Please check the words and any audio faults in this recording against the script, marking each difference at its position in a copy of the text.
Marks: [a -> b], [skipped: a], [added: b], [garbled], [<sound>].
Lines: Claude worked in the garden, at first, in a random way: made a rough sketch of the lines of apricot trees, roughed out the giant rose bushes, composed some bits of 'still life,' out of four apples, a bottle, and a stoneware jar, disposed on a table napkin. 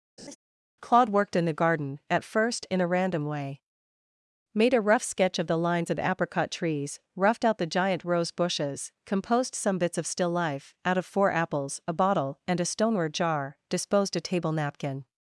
[laugh] Claude worked in the garden, at first, in a random way: made a rough sketch of the lines of apricot trees, roughed out the giant rose bushes, composed some bits of 'still life,' out of four apples, a bottle, and a stoneware jar, disposed [skipped: on] a table napkin.